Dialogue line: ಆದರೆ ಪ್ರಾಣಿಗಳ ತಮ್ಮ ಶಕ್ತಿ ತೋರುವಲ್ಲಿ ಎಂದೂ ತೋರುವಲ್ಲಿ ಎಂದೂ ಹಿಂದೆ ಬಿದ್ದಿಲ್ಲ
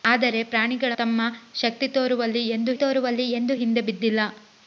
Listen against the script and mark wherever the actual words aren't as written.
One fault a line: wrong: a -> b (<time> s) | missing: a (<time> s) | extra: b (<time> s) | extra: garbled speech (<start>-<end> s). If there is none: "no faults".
no faults